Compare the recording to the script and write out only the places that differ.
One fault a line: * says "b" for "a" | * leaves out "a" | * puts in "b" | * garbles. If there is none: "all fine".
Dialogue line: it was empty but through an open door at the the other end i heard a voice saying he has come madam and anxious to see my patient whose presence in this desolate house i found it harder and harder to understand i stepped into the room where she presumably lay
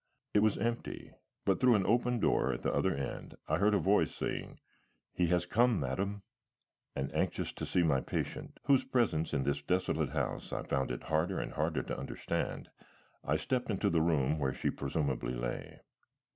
* leaves out "the"